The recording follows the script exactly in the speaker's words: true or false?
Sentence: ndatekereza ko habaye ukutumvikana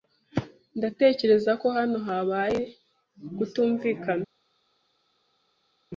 false